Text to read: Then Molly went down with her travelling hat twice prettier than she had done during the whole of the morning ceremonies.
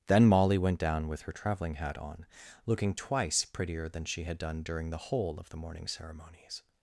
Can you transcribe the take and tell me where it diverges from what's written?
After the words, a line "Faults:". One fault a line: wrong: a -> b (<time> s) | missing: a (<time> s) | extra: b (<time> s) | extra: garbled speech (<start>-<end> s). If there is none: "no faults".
Then Molly went down with her travelling hat on, looking twice prettier than she had done during the whole of the morning ceremonies.
Faults:
extra: on looking (2.0 s)